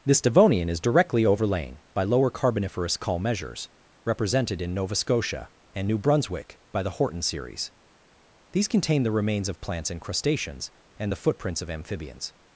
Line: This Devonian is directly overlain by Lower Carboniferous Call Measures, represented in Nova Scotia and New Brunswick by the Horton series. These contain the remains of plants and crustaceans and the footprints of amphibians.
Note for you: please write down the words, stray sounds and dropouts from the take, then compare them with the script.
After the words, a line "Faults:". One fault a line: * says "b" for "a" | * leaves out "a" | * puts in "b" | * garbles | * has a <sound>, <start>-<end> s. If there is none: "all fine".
This Devonian is directly overlain by Lower Carboniferous Call Measures, represented in Nova Scotia and New Brunswick by the Horton series. These contain the remains of plants and crustaceans and the footprints of amphibians.
Faults:
all fine